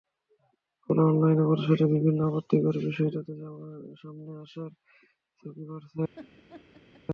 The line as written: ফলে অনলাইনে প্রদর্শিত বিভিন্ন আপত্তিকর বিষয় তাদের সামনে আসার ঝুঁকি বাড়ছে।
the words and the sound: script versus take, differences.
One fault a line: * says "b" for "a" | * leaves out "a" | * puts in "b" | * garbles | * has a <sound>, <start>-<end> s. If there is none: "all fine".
* has a laugh, 6.1-7.0 s